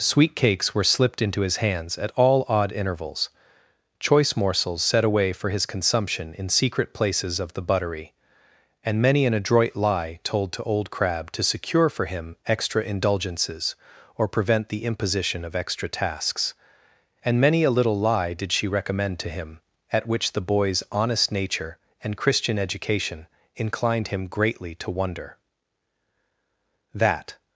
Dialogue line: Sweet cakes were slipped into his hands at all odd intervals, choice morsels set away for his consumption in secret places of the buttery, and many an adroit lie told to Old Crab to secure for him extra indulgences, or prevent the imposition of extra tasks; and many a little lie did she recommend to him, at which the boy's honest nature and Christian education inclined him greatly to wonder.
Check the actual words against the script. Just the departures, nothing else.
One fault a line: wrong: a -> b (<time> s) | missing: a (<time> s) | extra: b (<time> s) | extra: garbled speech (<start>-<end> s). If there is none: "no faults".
extra: That (26.9 s)